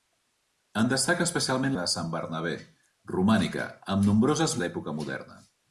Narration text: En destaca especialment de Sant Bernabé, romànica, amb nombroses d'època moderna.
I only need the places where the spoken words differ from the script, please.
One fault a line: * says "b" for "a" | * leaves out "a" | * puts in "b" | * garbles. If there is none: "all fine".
all fine